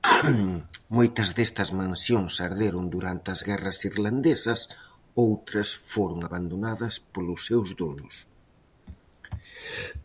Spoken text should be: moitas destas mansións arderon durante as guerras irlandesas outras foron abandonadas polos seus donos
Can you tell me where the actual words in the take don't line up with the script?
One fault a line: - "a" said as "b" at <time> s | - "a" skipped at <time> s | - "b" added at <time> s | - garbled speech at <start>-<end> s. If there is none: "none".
none